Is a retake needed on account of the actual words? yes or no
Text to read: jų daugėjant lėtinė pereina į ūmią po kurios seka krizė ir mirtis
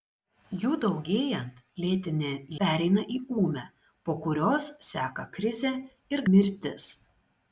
no